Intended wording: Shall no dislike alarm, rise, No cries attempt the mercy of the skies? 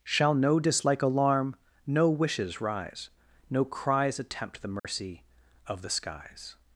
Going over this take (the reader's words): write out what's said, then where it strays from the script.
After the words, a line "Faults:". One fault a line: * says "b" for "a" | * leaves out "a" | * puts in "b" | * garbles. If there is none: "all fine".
Shall no dislike alarm, no wishes rise, No cries attempt the mercy of the skies?
Faults:
* puts in "no wishes"